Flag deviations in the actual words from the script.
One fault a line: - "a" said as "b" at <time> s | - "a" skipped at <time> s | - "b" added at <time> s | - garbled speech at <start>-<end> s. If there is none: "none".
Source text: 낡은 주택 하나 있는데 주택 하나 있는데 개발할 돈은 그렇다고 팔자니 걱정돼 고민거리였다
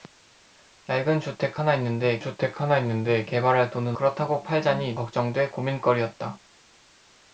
none